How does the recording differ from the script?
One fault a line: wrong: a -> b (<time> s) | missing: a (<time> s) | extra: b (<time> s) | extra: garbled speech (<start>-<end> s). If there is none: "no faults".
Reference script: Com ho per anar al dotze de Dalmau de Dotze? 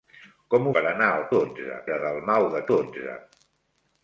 no faults